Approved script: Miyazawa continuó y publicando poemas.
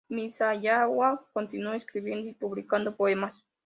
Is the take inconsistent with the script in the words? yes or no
yes